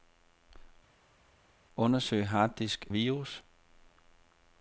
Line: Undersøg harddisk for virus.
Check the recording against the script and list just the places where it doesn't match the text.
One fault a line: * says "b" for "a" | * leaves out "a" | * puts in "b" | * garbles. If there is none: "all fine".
* leaves out "for"